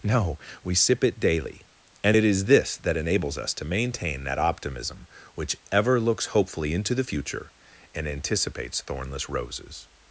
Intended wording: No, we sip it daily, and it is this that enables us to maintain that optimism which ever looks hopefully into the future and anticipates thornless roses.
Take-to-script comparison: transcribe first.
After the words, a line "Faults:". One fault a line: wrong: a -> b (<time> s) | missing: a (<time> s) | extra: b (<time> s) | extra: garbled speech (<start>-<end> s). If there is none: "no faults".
No, we sip it daily, and it is this that enables us to maintain that optimism which ever looks hopefully into the future and anticipates thornless roses.
Faults:
no faults